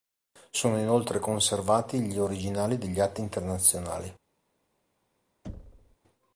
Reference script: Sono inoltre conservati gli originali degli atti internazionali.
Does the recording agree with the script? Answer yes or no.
yes